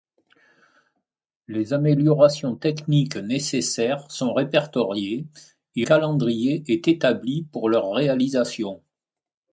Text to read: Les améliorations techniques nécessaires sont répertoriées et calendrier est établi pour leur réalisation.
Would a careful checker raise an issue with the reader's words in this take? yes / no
no